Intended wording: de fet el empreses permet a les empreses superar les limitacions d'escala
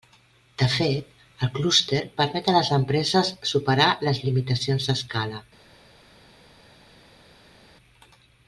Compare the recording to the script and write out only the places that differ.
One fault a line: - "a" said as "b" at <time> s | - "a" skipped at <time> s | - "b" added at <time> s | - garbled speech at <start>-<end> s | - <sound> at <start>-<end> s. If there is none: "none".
- "empreses" said as "clúster" at 1.6 s